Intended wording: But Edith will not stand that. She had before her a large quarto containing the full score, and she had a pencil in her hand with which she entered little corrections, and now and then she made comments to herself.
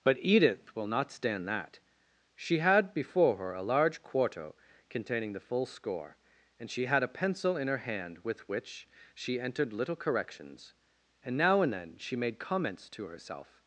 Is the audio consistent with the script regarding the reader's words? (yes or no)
yes